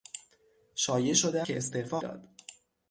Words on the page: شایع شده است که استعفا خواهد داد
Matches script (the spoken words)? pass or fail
fail